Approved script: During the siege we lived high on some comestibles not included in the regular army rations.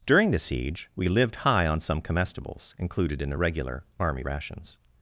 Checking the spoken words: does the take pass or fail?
fail